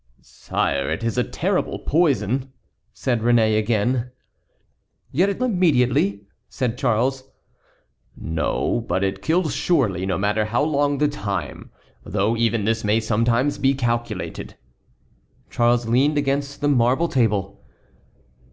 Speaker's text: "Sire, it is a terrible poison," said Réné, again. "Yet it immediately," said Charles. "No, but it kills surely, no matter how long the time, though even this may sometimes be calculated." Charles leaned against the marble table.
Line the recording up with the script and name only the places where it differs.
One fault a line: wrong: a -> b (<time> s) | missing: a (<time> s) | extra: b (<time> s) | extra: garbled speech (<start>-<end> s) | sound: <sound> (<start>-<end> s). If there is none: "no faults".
no faults